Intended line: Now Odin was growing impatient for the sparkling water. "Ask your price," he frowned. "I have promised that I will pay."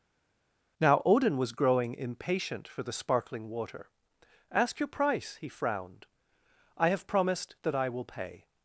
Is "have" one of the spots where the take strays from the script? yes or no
no